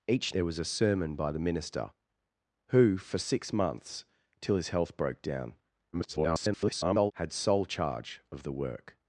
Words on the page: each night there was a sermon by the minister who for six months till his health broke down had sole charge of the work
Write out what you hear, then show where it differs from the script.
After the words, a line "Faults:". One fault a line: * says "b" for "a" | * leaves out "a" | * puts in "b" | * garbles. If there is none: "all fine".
each there was a sermon by the minister who for six months till his health broke down [garbled] had sole charge of the work
Faults:
* leaves out "night"
* garbles